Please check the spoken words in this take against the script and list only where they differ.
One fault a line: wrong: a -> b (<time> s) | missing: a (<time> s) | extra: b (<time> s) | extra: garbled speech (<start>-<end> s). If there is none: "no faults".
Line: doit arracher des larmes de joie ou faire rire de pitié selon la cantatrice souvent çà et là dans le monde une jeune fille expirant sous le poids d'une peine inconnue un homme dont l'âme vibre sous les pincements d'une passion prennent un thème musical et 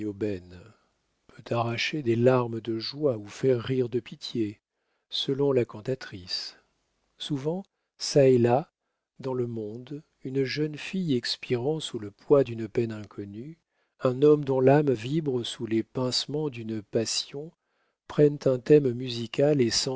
wrong: doit -> peut (1.3 s)